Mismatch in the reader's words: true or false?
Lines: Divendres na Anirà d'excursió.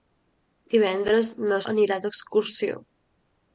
false